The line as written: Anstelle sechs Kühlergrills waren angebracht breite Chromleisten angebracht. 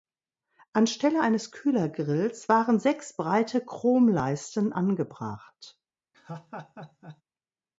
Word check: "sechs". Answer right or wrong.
wrong